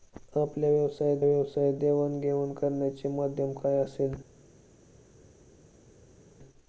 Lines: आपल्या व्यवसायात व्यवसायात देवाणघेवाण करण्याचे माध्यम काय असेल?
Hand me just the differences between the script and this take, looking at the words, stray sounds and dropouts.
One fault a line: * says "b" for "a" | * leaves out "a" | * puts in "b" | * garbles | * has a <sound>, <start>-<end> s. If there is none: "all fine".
all fine